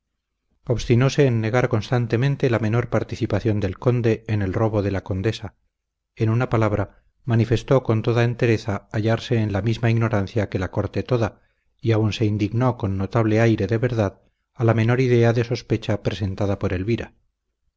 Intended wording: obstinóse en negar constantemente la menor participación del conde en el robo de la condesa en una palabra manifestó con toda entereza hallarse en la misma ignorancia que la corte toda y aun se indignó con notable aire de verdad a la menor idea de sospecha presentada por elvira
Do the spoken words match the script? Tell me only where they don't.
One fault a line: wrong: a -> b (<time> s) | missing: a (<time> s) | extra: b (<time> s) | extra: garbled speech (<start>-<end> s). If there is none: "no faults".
no faults